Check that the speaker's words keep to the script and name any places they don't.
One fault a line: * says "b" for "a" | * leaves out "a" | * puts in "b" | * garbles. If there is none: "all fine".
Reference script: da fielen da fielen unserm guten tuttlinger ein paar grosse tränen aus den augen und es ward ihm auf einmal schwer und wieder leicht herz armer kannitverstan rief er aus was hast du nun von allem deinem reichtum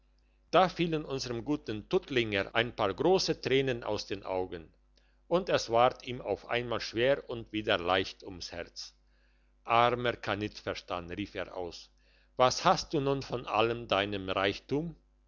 * leaves out "da fielen"
* puts in "ums"